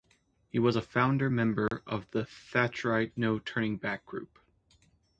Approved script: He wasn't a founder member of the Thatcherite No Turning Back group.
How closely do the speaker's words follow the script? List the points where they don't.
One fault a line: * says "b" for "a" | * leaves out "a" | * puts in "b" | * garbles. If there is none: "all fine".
* says "was" for "wasn't"